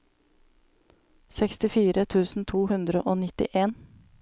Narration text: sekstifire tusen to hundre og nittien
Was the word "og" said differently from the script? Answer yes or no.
no